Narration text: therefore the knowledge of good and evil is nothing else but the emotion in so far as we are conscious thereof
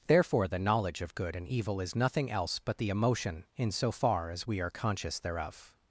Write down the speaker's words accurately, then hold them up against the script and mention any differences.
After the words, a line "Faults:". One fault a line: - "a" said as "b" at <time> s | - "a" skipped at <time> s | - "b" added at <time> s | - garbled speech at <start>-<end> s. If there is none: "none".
therefore the knowledge of good and evil is nothing else but the emotion in so far as we are conscious thereof
Faults:
none